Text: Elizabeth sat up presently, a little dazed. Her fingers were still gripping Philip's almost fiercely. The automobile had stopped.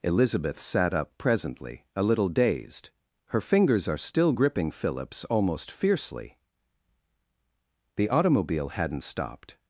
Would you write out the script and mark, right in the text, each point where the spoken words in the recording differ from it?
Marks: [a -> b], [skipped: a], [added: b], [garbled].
Elizabeth sat up presently, a little dazed. Her fingers [were -> are] still gripping Philip's almost fiercely. The automobile [had -> hadn't] stopped.